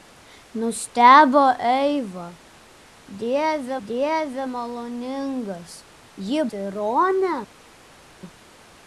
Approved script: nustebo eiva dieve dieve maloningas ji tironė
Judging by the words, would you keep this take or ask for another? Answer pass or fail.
pass